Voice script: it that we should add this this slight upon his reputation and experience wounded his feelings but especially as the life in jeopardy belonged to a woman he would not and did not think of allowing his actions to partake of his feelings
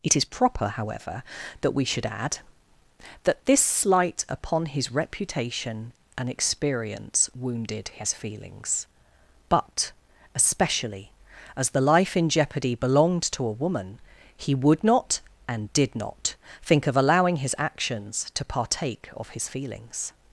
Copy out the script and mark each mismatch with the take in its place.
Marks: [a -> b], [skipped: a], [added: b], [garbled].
it [added: is proper however] that we should add [this -> that] this slight upon his reputation and experience wounded his feelings but especially as the life in jeopardy belonged to a woman he would not and did not think of allowing his actions to partake of his feelings